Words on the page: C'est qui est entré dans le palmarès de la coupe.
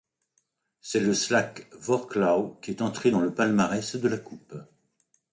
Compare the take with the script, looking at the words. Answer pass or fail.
fail